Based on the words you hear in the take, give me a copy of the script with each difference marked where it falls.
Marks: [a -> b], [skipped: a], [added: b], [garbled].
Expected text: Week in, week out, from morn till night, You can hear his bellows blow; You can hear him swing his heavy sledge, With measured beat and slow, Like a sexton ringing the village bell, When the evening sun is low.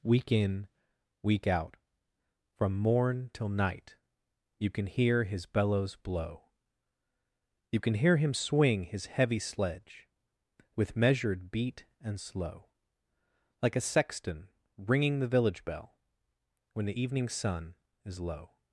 Week in, week out, from morn till night, You can hear his bellows blow; You can hear him swing his heavy sledge, With measured beat and slow, Like a sexton ringing the village bell, When the evening sun is low.